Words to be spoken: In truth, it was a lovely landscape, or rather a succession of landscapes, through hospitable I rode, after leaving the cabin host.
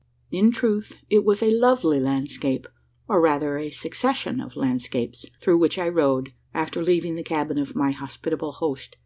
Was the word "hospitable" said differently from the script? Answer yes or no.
yes